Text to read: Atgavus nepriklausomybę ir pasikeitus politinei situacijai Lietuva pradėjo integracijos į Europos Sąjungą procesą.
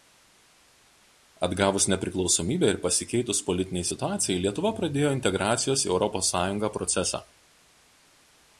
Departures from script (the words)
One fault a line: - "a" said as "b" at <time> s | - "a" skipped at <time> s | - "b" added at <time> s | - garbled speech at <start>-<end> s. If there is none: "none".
none